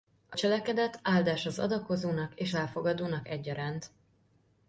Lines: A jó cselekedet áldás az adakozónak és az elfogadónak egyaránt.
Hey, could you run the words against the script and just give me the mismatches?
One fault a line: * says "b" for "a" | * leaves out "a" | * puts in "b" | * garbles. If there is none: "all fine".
* leaves out "jó"
* leaves out "az"